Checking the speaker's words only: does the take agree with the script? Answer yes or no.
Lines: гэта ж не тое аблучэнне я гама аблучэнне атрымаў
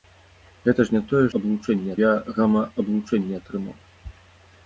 yes